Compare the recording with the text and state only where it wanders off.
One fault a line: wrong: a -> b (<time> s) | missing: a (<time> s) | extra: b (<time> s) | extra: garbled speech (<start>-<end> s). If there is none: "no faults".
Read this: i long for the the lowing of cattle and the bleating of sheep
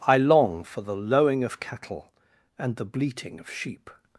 missing: the (1.0 s)